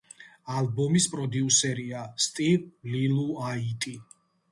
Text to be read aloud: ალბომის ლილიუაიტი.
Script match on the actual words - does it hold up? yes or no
no